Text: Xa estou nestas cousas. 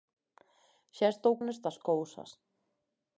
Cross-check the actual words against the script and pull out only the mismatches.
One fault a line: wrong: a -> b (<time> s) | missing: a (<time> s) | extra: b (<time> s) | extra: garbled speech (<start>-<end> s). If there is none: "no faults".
no faults